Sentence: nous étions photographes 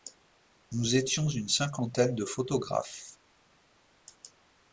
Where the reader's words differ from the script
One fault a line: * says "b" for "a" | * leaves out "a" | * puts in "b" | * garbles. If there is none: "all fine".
* puts in "une cinquantaine de"